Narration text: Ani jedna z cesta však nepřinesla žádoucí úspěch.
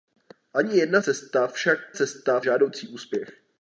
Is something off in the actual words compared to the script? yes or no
yes